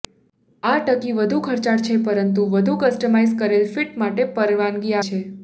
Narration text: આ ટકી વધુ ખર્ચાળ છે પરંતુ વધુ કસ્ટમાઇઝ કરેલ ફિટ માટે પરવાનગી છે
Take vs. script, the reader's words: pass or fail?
pass